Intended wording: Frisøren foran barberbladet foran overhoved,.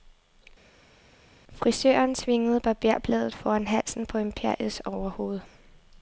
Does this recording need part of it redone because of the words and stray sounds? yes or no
yes